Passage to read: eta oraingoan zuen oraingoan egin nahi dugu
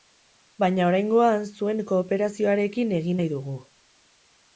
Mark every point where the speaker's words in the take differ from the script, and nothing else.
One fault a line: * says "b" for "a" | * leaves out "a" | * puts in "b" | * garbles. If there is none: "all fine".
* says "baina" for "eta"
* says "kooperazioarekin" for "oraingoan"